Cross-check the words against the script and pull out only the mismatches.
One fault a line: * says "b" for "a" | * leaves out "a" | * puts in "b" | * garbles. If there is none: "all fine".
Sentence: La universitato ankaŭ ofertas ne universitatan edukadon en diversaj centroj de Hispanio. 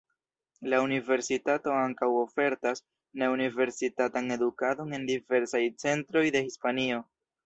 all fine